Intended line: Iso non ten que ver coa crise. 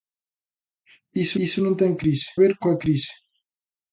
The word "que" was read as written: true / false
false